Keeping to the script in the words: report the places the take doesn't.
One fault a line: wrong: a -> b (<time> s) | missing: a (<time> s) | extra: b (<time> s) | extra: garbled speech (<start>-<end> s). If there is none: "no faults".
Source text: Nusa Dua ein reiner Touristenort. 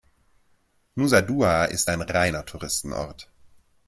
extra: ist (1.6 s)